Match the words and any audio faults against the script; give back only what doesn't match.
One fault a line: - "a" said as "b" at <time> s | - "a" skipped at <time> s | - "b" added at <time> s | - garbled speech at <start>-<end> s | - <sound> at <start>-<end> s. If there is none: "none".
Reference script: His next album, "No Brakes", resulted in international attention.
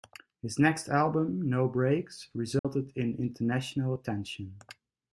- dropout at 2.6-2.6 s